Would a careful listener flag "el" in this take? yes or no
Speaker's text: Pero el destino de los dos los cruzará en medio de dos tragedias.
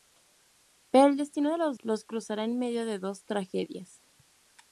no